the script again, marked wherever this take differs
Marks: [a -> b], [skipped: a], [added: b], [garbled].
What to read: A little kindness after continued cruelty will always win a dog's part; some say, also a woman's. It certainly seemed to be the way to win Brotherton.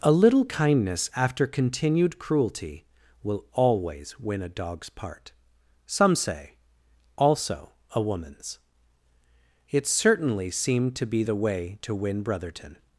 A little kindness after continued cruelty will always win a dog's part; some say, also a woman's. It certainly seemed to be the way to win Brotherton.